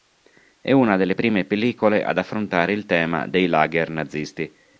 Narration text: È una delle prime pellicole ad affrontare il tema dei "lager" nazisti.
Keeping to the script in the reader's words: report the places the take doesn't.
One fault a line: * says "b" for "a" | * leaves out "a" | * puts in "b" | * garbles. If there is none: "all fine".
all fine